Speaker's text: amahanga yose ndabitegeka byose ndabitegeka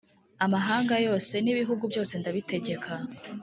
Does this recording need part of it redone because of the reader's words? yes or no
yes